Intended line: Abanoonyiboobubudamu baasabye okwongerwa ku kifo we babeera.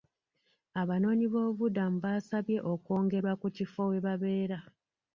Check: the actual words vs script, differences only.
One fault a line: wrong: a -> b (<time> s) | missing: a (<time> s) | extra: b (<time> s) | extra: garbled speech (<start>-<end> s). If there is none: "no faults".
no faults